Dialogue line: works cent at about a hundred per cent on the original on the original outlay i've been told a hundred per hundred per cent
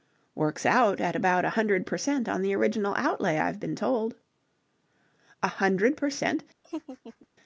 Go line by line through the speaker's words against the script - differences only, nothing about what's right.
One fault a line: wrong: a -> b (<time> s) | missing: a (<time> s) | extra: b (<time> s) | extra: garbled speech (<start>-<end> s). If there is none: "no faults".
wrong: cent -> out (0.7 s)
missing: on the original (3.0 s)
missing: hundred per (6.1 s)